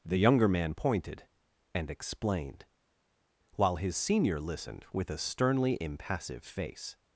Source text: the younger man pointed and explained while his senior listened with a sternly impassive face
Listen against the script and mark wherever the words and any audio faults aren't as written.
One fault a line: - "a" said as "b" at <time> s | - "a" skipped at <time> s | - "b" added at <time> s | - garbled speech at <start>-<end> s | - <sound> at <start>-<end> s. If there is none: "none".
none